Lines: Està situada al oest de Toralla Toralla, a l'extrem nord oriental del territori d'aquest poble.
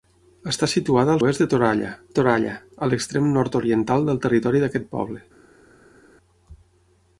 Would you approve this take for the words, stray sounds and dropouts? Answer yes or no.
yes